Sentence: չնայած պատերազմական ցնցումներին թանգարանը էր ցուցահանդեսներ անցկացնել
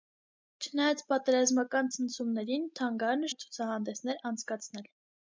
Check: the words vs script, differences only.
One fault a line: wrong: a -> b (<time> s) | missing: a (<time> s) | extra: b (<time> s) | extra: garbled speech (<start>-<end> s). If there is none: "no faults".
no faults